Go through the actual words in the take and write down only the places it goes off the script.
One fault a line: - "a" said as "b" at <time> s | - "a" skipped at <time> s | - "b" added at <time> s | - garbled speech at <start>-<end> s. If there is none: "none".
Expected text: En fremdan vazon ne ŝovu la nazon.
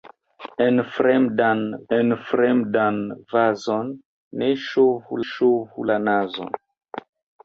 - "en fremdan" added at 1.9 s
- "ŝovu" added at 5.3 s